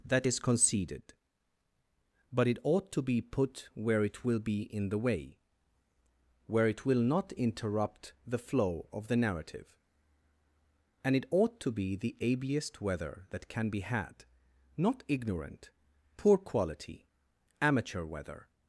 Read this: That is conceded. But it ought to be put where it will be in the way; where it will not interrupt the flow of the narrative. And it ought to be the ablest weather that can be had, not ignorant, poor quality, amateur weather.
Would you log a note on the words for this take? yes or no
no